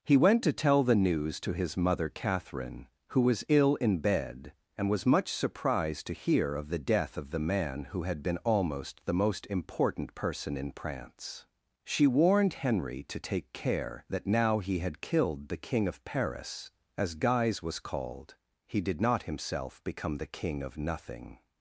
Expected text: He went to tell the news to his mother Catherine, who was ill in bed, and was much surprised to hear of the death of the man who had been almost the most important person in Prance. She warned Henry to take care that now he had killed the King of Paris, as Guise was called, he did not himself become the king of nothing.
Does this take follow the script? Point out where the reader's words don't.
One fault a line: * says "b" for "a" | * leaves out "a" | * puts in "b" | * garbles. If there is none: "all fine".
all fine